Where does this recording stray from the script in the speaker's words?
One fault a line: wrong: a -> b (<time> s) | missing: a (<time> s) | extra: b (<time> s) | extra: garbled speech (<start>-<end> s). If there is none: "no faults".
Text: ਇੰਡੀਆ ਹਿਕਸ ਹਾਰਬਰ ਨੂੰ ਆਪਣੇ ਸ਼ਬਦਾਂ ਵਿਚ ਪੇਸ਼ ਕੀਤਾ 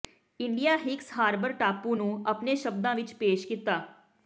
extra: ਟਾਪੂ (1.5 s)